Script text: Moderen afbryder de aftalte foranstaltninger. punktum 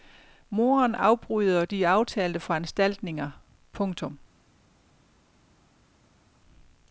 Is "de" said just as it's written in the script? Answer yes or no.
yes